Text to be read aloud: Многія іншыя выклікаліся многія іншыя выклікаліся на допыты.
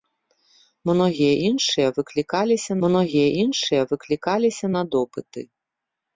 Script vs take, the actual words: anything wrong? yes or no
no